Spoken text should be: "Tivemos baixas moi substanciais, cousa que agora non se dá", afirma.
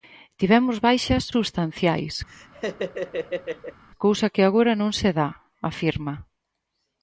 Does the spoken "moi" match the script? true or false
false